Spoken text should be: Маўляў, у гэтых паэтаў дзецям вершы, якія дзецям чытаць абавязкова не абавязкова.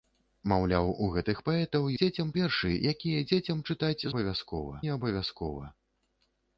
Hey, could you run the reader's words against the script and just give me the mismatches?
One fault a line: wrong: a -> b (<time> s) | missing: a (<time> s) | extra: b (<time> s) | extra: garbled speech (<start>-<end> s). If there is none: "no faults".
no faults